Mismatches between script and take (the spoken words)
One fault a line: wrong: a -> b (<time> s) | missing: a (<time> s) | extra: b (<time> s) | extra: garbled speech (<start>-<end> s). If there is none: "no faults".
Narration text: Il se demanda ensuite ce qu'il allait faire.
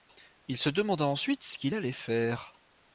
no faults